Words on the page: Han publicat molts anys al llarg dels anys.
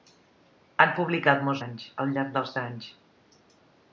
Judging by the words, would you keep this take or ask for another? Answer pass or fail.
pass